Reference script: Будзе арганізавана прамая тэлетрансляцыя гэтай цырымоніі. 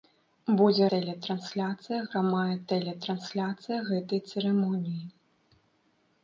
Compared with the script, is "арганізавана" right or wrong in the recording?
wrong